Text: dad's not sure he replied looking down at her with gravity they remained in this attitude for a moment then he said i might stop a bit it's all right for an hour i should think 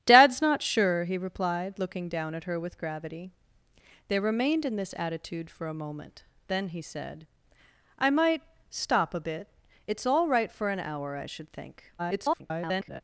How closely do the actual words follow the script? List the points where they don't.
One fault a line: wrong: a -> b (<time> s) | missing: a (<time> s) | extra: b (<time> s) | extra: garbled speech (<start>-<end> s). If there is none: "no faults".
extra: garbled speech (12.0-13.0 s)